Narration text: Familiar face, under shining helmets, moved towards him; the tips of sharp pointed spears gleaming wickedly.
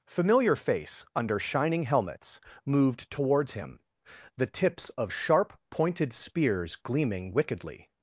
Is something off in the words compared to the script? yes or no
no